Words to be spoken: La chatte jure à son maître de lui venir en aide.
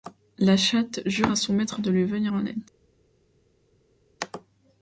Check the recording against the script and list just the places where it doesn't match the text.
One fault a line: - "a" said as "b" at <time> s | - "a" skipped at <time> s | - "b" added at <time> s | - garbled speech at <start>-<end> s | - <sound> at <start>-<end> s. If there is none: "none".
none